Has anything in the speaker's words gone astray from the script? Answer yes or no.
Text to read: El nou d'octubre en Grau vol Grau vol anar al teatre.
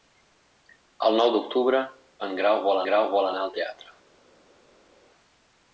no